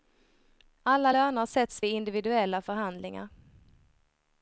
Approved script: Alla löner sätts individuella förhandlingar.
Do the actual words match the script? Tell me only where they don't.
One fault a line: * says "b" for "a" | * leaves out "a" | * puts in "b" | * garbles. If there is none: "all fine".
* puts in "vid"